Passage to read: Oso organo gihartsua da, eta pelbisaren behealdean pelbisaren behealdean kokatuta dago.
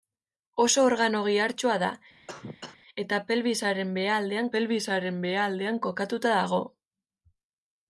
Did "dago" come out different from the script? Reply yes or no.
no